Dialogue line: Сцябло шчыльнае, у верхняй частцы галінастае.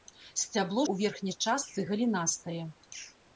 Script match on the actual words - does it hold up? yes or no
no